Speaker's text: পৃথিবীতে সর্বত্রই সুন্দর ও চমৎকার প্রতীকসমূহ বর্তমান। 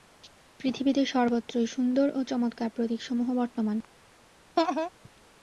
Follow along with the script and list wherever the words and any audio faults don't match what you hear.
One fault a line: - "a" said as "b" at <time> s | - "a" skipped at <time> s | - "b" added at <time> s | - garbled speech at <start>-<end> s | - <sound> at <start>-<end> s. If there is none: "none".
- laugh at 4.6-4.9 s